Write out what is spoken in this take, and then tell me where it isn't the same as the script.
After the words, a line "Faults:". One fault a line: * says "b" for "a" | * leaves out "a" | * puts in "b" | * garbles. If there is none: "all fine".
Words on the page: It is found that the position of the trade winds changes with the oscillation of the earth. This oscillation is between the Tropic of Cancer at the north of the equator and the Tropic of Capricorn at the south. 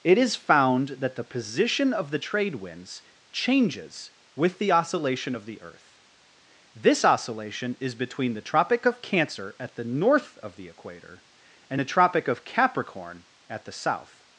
It is found that the position of the trade winds changes with the oscillation of the earth. This oscillation is between the Tropic of Cancer at the north of the equator and the Tropic of Capricorn at the south.
Faults:
all fine